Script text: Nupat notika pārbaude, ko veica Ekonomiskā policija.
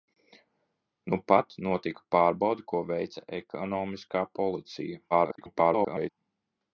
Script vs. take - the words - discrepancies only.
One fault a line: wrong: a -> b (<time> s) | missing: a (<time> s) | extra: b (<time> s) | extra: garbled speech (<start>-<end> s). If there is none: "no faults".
extra: garbled speech (5.1-6.1 s)